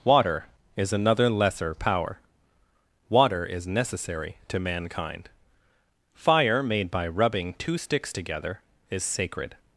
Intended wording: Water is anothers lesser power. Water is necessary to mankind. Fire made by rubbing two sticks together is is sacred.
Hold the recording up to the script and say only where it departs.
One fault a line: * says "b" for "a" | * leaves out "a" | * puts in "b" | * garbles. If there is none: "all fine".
* says "another" for "anothers"
* leaves out "is"